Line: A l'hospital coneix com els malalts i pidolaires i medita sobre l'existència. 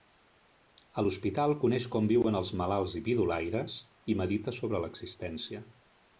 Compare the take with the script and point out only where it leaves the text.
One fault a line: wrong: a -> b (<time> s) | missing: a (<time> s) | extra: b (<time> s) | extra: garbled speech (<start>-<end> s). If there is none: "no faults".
extra: viuen (2.1 s)